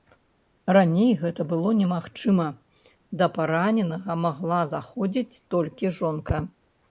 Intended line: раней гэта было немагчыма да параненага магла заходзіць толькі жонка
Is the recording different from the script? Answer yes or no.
no